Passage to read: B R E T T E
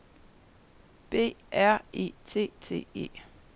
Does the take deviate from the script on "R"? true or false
false